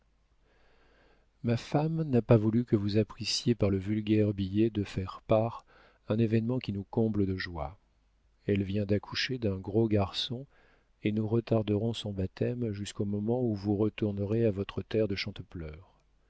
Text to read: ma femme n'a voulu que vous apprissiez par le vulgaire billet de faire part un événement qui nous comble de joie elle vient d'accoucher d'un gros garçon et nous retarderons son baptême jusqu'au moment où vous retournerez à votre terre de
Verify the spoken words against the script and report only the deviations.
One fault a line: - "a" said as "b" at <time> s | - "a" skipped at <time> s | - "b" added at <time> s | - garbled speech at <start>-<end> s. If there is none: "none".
- "pas" added at 2.2 s